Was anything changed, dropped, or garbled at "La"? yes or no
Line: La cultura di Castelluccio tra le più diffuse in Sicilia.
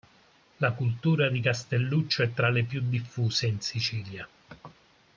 no